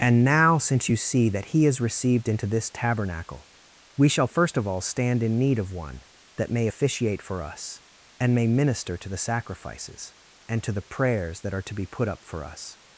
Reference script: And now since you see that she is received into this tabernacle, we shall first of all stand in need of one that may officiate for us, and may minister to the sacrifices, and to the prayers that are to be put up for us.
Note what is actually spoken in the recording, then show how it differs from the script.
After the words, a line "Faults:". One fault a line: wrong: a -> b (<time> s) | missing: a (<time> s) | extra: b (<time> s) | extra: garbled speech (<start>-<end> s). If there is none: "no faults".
And now since you see that he is received into this tabernacle, we shall first of all stand in need of one that may officiate for us, and may minister to the sacrifices, and to the prayers that are to be put up for us.
Faults:
wrong: she -> he (1.5 s)